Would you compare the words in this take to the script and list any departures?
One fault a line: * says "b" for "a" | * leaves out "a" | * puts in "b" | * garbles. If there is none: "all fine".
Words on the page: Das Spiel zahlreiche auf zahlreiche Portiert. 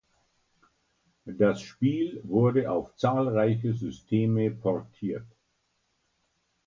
* says "wurde" for "zahlreiche"
* puts in "Systeme"